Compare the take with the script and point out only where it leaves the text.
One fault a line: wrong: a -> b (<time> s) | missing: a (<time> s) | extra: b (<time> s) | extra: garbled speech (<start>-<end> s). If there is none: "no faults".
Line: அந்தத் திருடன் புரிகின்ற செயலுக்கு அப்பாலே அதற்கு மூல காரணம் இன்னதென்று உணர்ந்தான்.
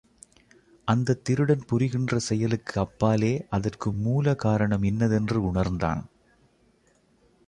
no faults